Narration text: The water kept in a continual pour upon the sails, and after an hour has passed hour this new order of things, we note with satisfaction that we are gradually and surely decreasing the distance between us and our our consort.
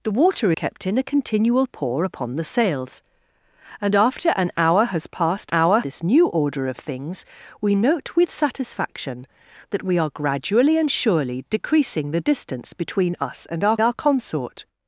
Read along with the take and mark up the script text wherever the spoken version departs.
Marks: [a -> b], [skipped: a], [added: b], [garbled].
The water kept in a continual pour upon the sails, and after an hour has passed hour this new order of things, we note with satisfaction that we are gradually and surely decreasing the distance between us and our our consort.